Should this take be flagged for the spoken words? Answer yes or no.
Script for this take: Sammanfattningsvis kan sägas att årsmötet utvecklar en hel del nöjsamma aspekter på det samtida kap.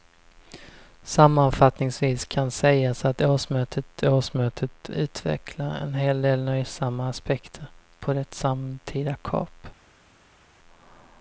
yes